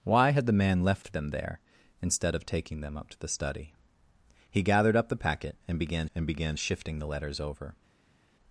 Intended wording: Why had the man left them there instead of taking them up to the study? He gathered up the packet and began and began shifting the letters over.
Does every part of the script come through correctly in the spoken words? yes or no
yes